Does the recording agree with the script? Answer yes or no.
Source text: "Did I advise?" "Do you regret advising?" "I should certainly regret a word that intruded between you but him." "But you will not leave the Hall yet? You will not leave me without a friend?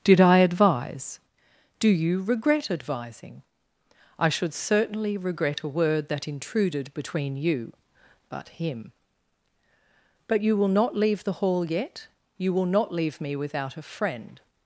yes